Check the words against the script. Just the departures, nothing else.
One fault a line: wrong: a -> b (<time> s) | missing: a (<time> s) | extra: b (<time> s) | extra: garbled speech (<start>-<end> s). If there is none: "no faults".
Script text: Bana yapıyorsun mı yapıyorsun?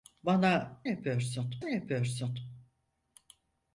no faults